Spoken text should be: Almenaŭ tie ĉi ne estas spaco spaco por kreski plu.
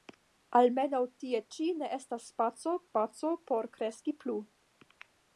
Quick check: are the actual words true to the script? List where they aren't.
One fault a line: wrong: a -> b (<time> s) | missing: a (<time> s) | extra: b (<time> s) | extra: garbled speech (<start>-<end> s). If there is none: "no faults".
no faults